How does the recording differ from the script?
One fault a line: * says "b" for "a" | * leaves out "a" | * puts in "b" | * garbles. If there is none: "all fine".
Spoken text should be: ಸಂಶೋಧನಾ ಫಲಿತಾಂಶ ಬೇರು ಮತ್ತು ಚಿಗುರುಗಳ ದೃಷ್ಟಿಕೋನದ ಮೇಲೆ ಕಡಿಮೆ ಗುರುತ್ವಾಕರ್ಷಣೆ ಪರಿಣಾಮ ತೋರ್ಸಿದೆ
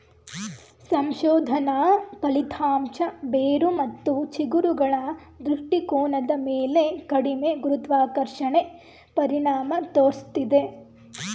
all fine